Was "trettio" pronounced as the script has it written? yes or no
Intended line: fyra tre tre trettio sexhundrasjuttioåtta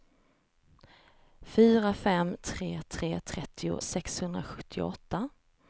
yes